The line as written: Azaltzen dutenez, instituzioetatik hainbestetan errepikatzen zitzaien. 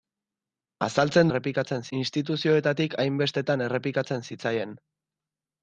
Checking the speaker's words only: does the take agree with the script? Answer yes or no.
no